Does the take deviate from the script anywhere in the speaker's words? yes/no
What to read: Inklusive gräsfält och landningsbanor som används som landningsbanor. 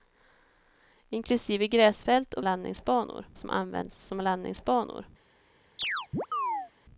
no